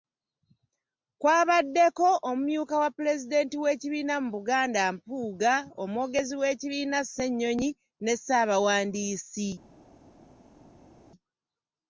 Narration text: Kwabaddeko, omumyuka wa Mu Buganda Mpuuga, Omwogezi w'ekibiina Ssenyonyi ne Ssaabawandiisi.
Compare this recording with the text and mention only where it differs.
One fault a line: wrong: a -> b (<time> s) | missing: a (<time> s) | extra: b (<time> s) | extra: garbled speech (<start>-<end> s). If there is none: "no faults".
extra: Pulezidenti w'ekibiina (3.0 s)